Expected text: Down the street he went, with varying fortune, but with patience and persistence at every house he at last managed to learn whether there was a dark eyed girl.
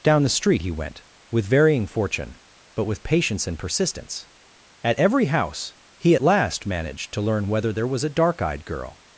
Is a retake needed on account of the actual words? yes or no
no